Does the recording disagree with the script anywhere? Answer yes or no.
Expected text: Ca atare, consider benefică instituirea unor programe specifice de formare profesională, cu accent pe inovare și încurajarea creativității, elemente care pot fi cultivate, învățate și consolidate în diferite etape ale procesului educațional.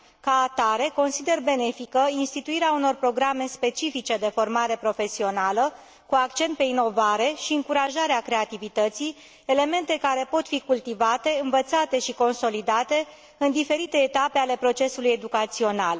no